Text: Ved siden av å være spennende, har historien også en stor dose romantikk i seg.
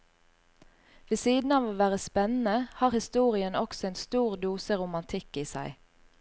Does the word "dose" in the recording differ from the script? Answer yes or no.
no